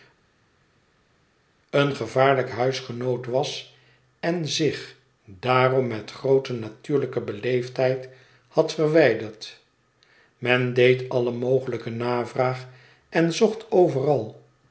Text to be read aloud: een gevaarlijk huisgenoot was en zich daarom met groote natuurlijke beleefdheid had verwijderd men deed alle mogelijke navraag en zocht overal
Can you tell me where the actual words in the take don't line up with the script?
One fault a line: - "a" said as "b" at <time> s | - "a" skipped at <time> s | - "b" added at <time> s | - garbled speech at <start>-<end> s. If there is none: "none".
none